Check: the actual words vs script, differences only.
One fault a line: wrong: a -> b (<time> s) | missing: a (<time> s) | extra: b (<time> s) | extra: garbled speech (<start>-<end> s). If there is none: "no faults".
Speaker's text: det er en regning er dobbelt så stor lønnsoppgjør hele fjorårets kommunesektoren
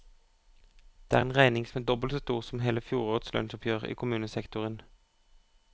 extra: som (1.7 s)
wrong: lønnsoppgjør -> som (2.4 s)
extra: lønnsoppgjør i (3.3 s)